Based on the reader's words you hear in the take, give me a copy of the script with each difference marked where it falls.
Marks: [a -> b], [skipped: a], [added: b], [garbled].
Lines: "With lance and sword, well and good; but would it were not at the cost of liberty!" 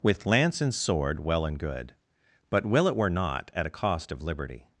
"With lance and sword, well and good; but [would -> will] it were not at [the -> a] cost of liberty!"